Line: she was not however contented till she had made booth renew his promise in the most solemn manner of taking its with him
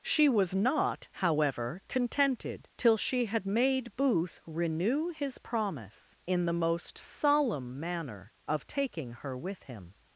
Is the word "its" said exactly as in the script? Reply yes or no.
no